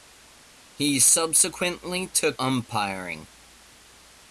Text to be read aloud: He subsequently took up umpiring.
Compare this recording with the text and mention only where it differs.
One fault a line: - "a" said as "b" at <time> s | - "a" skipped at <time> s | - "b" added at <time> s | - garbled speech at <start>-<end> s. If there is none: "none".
- "up" skipped at 2.4 s